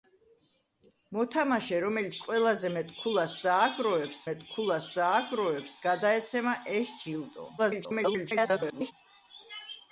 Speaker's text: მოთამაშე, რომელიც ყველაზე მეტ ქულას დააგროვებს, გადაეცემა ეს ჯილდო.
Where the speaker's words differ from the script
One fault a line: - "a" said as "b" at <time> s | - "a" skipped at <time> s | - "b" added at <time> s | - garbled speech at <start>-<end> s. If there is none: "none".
- "მეტ ქულას დააგროვებს" added at 4.3 s
- garbled speech at 7.6-8.9 s